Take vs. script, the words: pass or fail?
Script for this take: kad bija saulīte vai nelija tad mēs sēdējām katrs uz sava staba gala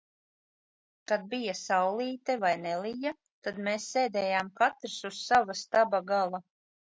pass